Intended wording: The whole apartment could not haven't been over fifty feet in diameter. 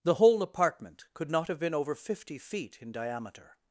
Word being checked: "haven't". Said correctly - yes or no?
no